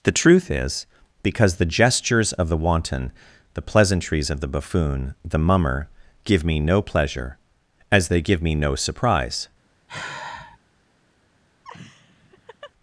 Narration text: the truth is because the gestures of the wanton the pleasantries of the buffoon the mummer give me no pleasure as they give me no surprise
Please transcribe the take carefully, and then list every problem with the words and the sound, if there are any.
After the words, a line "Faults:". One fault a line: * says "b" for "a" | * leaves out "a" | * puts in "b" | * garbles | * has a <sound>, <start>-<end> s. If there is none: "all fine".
the truth is because the gestures of the wanton the pleasantries of the buffoon the mummer give me no pleasure as they give me no surprise
Faults:
* has a sigh, 9.9-10.6 s
* has a laugh, 11.6-12.7 s